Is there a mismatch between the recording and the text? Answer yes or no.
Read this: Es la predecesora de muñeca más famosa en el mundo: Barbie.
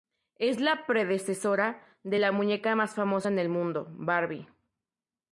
yes